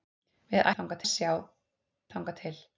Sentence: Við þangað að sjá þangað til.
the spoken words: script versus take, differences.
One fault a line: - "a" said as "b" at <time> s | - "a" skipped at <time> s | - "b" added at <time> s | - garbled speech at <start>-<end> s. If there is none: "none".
none